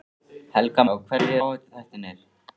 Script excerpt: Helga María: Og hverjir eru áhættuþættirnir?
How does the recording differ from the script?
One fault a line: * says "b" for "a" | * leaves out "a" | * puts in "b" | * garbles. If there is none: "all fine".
* leaves out "María"
* leaves out "eru"